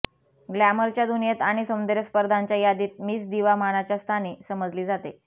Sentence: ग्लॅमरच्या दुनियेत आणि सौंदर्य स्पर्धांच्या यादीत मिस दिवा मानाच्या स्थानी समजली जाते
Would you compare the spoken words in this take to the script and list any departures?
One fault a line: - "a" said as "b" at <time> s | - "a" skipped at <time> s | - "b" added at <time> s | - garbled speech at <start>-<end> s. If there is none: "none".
none